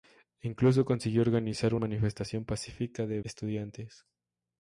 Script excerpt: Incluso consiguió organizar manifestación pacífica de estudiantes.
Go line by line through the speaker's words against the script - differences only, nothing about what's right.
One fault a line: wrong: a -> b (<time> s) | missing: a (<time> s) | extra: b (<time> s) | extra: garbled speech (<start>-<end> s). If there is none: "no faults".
no faults